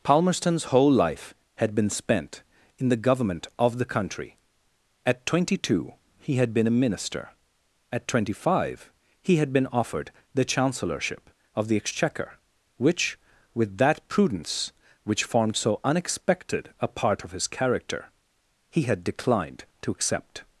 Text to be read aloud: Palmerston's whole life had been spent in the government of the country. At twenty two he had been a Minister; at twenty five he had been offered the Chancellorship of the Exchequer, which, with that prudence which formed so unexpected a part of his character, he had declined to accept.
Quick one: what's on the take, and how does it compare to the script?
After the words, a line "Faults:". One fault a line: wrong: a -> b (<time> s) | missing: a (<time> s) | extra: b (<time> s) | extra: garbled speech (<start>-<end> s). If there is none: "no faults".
Palmerston's whole life had been spent in the government of the country. At twenty two he had been a Minister; at twenty five he had been offered the Chancellorship of the Exchequer, which, with that prudence which formed so unexpected a part of his character, he had declined to accept.
Faults:
no faults